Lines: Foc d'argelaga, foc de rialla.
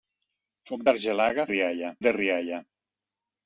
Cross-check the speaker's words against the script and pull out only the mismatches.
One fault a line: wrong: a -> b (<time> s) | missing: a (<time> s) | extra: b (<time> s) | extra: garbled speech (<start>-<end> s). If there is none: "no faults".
wrong: foc -> rialla (1.5 s)